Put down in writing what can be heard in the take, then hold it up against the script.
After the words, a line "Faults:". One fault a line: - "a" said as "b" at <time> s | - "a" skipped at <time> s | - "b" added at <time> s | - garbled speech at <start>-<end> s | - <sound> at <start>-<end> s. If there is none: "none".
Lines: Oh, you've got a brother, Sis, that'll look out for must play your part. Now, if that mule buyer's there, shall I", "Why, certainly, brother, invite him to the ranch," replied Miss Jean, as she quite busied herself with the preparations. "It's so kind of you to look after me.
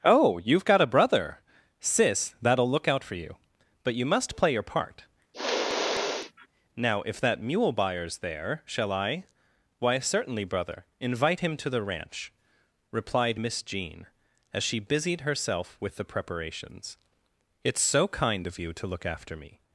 Oh, you've got a brother, Sis, that'll look out for you. But you must play your part. Now, if that mule buyer's there, shall I", "Why, certainly, brother, invite him to the ranch," replied Miss Jean, as she busied herself with the preparations. "It's so kind of you to look after me.
Faults:
- "you But you" added at 3.1 s
- sniff at 5.3-6.5 s
- "quite" skipped at 14.8 s